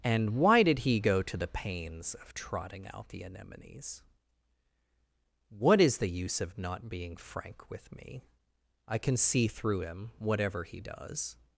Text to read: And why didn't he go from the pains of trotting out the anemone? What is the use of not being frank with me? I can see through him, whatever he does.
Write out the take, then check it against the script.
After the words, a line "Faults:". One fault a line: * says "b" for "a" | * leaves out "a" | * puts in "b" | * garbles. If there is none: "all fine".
And why did he go to the pains of trotting out the anemones? What is the use of not being frank with me? I can see through him, whatever he does.
Faults:
* says "did" for "didn't"
* says "to" for "from"
* says "anemones" for "anemone"